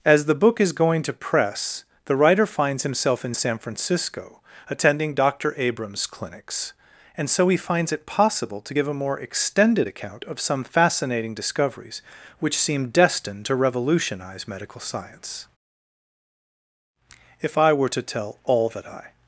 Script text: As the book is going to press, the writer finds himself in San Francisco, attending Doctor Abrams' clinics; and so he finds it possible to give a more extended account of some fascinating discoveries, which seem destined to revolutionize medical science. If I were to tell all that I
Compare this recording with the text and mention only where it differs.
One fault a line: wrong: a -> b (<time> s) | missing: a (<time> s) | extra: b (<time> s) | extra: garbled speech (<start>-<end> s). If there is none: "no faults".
no faults